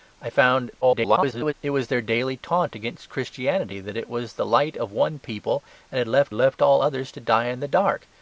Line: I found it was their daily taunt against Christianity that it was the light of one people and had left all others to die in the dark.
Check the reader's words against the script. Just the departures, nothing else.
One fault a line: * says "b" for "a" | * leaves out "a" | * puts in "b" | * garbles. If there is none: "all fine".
* garbles
* puts in "left"